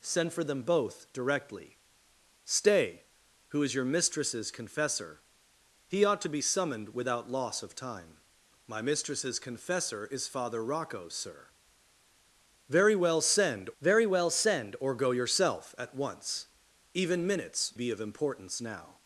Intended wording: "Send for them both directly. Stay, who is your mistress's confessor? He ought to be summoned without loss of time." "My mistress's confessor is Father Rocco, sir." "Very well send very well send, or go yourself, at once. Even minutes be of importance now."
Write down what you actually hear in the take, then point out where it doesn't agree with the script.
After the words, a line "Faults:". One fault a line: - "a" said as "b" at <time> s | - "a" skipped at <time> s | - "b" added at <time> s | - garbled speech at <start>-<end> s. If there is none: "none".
"Send for them both directly. Stay, who is your mistress's confessor? He ought to be summoned without loss of time." "My mistress's confessor is Father Rocco, sir." "Very well send very well send, or go yourself, at once. Even minutes be of importance now."
Faults:
none